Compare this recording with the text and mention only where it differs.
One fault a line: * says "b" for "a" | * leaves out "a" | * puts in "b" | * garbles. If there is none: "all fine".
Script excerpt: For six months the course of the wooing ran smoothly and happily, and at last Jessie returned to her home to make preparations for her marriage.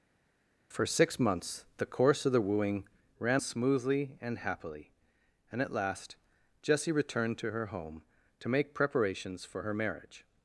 all fine